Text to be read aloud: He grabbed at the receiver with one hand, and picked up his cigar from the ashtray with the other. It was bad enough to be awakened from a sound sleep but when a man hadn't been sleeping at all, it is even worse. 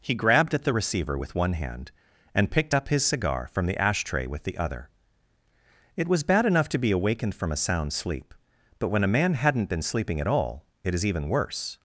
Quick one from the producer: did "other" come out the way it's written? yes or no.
yes